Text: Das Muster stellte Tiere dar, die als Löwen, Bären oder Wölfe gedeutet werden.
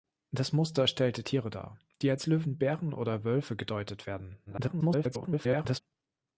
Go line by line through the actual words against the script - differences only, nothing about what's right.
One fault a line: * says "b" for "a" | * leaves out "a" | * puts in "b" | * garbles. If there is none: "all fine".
* garbles